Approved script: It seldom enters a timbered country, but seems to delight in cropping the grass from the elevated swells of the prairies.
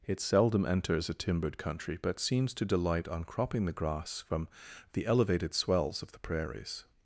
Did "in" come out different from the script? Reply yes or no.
yes